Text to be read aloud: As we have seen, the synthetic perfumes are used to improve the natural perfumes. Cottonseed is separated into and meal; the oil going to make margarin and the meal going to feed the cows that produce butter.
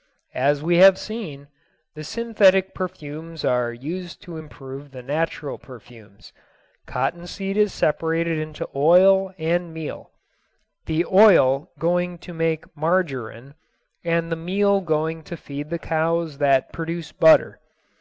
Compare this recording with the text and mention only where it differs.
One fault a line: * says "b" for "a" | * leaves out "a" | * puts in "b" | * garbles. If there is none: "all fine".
* puts in "oil"